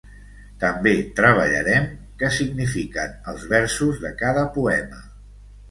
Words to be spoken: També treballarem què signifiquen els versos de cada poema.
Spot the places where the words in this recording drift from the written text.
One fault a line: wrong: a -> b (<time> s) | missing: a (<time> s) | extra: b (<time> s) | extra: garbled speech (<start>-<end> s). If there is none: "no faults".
no faults